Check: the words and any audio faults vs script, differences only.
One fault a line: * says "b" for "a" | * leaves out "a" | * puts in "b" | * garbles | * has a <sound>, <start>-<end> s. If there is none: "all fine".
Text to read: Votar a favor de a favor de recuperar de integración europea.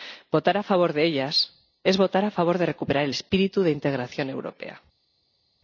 * puts in "ellas es votar"
* puts in "el espíritu"